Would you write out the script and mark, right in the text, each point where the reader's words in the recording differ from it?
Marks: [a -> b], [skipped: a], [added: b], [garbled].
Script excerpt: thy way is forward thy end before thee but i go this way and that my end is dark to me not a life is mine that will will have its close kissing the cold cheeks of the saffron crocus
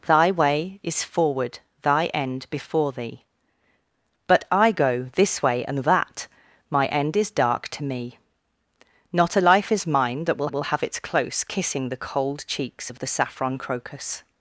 thy way is forward thy end before thee but i go this way and that my end is dark to me not a life is mine that will will have its close kissing the cold cheeks of the saffron crocus